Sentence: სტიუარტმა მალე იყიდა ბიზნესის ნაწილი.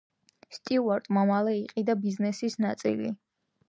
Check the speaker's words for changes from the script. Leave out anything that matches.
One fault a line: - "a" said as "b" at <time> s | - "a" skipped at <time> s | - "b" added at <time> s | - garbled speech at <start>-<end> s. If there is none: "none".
none